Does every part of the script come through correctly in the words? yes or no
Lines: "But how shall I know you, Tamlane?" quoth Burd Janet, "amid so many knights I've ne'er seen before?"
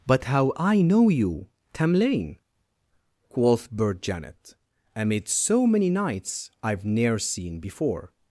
no